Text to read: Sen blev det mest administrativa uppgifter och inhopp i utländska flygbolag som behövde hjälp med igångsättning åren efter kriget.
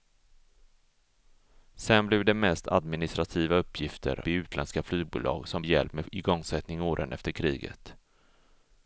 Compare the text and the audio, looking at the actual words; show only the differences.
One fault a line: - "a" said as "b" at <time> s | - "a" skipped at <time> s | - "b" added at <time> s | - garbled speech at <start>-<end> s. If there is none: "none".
- "och inhopp" skipped at 4.2 s
- "behövde" skipped at 5.6 s